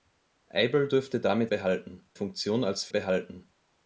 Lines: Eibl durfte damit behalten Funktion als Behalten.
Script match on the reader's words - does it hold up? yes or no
yes